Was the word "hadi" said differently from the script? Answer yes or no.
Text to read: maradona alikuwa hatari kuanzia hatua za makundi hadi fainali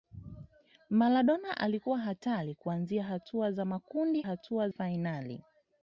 yes